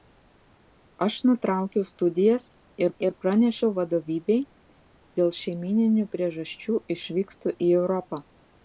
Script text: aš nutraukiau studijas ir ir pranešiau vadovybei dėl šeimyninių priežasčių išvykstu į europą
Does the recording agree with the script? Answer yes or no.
yes